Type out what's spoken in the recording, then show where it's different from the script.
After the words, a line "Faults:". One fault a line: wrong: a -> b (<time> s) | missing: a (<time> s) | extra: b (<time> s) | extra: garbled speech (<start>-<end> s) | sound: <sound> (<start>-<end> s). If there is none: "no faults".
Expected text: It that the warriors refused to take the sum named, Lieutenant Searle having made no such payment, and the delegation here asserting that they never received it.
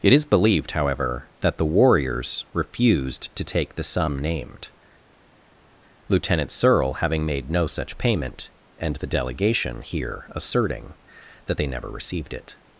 It is believed, however, that the warriors refused to take the sum named, Lieutenant Searle having made no such payment, and the delegation here asserting that they never received it.
Faults:
extra: is believed however (0.1 s)